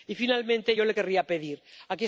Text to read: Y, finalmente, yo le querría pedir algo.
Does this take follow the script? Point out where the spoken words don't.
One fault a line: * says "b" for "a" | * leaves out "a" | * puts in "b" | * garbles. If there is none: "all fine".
all fine